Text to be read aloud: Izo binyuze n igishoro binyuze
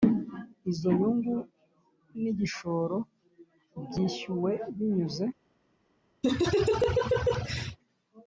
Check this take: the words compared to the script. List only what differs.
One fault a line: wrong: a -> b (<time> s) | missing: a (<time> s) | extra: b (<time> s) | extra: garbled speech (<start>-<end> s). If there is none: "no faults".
wrong: binyuze -> nyungu (1.0 s)
extra: byishyuwe (3.9 s)